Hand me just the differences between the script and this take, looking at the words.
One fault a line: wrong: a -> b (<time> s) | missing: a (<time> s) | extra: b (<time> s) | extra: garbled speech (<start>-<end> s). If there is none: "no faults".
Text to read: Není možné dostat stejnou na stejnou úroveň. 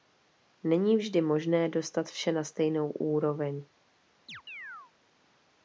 extra: vždy (1.0 s)
wrong: stejnou -> vše (2.1 s)